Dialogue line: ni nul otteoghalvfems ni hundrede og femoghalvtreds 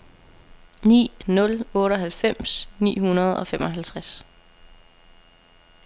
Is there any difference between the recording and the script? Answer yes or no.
no